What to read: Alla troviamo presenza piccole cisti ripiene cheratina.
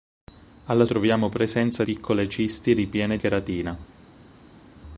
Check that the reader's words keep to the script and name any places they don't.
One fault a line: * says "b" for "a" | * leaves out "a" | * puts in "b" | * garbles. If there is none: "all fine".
all fine